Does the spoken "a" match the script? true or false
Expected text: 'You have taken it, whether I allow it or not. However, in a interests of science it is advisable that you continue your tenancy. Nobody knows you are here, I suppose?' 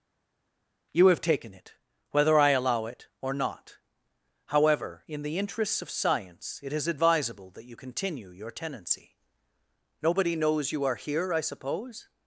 false